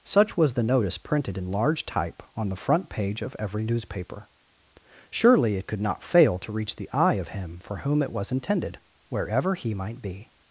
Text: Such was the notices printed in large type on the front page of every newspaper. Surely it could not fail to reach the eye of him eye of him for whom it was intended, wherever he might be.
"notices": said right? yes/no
no